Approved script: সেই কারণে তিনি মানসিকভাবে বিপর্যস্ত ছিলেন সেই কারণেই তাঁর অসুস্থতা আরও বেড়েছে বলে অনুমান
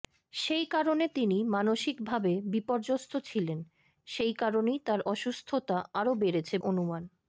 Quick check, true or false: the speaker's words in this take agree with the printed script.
false